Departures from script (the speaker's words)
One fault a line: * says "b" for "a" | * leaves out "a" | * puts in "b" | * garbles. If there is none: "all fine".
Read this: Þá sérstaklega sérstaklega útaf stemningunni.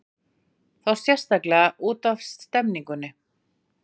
* leaves out "sérstaklega"